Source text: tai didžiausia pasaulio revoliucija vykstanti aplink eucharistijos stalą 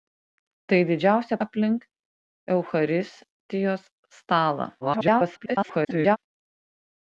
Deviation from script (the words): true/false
true